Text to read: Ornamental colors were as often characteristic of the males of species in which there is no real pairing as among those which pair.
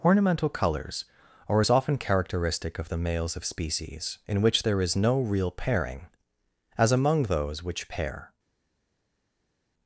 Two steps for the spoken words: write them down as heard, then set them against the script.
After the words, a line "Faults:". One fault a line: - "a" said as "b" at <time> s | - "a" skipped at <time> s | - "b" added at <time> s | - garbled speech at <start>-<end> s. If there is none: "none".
Ornamental colors are as often characteristic of the males of species in which there is no real pairing as among those which pair.
Faults:
- "were" said as "are" at 1.5 s